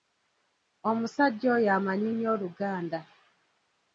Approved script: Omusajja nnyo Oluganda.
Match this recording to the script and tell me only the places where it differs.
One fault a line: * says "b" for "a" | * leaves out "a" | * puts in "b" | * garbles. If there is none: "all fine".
* puts in "oyo amanyi"